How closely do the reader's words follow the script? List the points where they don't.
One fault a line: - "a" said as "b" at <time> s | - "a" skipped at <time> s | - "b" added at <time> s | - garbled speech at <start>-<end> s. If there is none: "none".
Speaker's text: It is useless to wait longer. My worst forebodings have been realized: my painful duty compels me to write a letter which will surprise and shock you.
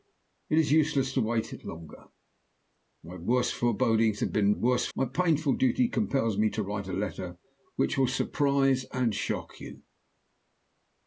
- "realized" said as "worst" at 4.5 s